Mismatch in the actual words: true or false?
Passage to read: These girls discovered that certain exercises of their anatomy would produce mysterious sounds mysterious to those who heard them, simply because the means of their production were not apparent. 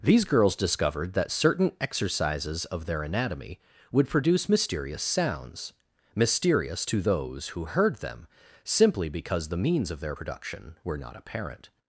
false